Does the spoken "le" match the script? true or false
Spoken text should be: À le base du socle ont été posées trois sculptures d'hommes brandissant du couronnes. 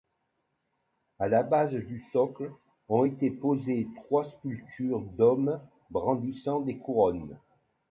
false